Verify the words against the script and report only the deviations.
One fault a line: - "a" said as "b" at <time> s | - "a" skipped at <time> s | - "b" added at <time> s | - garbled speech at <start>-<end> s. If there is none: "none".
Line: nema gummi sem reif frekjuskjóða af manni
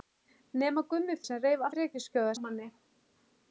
none